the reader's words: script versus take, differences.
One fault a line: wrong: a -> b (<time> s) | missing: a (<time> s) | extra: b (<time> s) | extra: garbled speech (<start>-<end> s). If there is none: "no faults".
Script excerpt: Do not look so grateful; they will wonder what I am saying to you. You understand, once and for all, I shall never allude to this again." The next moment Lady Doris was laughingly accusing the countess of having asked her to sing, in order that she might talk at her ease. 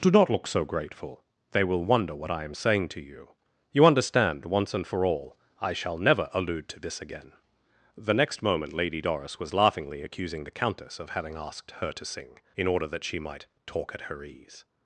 no faults